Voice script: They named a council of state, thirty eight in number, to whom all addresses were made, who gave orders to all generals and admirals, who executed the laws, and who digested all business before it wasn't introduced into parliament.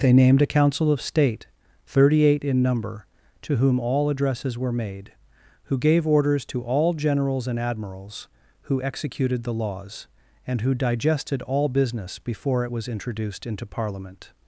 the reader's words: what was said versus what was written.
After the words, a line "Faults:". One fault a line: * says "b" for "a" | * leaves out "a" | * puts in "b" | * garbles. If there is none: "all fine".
They named a council of state, thirty eight in number, to whom all addresses were made, who gave orders to all generals and admirals, who executed the laws, and who digested all business before it was introduced into parliament.
Faults:
* says "was" for "wasn't"